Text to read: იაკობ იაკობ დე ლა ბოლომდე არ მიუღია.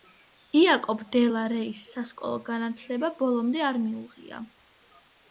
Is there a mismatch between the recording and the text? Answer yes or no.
yes